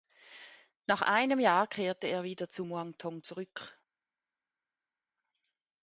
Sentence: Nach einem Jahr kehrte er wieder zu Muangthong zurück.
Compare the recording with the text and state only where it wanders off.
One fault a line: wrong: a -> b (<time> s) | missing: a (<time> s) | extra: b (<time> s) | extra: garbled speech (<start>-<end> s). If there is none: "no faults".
no faults